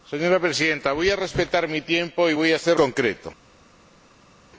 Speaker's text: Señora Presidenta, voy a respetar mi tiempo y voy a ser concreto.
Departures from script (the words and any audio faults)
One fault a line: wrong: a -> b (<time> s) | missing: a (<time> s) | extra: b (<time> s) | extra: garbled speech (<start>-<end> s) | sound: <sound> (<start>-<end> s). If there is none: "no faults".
no faults